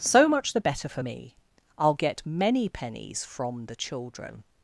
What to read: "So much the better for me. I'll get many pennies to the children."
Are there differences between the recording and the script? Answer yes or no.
yes